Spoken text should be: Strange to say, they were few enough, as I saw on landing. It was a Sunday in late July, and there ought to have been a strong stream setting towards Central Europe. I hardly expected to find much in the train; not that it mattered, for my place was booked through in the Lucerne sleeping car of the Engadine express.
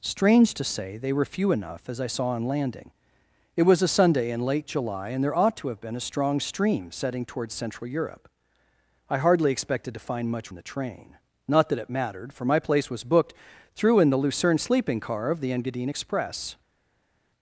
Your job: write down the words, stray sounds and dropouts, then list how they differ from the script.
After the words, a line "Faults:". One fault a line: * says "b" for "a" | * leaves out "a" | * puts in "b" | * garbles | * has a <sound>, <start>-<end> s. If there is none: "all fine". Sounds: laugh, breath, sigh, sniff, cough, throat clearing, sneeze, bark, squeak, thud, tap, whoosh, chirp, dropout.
Strange to say, they were few enough, as I saw on landing. It was a Sunday in late July, and there ought to have been a strong stream setting towards Central Europe. I hardly expected to find much in the train; not that it mattered, for my place was booked through in the Lucerne sleeping car of the Engadine express.
Faults:
all fine